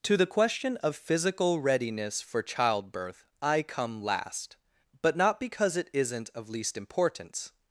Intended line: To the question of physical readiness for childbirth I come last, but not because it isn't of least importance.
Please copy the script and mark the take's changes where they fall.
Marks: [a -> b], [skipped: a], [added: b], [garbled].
To the question of physical readiness for childbirth I come last, but not because it isn't of least importance.